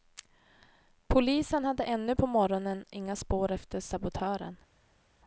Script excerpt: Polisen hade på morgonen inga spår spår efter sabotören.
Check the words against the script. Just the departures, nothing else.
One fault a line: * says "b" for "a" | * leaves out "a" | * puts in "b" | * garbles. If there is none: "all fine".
* puts in "ännu"
* leaves out "spår"